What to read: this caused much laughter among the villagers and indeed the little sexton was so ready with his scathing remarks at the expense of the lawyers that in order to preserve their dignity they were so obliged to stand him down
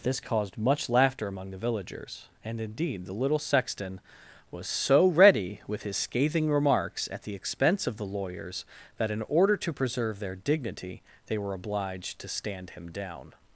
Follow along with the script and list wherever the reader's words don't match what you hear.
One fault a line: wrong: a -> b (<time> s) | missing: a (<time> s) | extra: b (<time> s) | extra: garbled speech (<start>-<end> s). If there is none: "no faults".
missing: so (11.5 s)